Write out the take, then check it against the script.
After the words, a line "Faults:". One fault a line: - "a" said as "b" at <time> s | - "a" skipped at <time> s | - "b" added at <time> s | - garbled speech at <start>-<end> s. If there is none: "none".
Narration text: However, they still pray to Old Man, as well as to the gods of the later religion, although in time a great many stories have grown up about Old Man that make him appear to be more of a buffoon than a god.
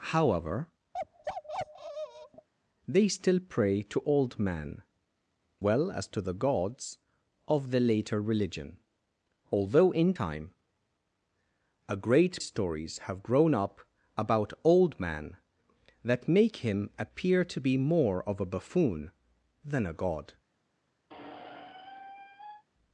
However, they still pray to Old Man, well as to the gods of the later religion, although in time a great stories have grown up about Old Man that make him appear to be more of a buffoon than a god.
Faults:
- "as" skipped at 4.8 s
- "many" skipped at 12.4 s